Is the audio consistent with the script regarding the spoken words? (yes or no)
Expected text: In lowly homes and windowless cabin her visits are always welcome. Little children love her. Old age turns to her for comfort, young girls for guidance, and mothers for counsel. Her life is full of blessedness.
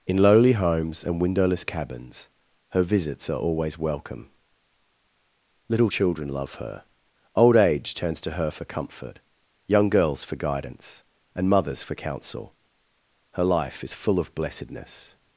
no